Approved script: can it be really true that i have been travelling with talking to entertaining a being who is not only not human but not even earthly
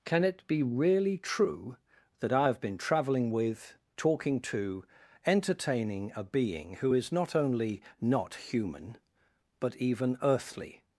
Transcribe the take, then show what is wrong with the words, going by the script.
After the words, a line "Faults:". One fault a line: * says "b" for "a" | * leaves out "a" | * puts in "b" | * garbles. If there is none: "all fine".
can it be really true that i have been travelling with talking to entertaining a being who is not only not human but even earthly
Faults:
* leaves out "not"